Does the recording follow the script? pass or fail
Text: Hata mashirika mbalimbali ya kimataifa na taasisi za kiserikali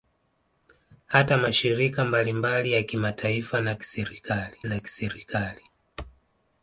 fail